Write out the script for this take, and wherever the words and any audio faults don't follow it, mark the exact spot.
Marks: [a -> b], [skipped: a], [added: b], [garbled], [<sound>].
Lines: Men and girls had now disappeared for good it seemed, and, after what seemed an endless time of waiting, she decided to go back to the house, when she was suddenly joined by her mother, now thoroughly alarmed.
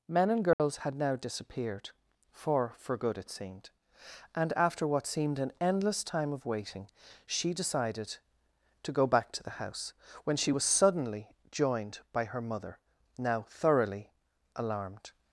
Men and girls [dropout] had now disappeared for [added: for] good it seemed, and, after what seemed an endless time of waiting, she decided to go back to the house, when she was suddenly joined by her mother, now thoroughly alarmed.